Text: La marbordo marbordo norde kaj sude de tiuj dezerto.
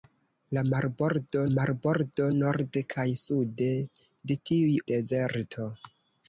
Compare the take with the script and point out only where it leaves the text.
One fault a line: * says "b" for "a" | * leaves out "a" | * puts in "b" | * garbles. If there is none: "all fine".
all fine